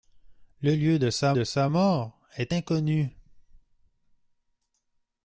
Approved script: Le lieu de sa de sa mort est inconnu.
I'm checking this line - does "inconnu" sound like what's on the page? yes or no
yes